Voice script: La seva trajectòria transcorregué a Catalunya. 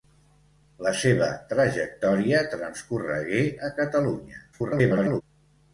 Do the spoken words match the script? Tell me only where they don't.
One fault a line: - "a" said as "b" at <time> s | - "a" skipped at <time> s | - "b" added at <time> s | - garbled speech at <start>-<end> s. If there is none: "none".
- garbled speech at 4.5-5.2 s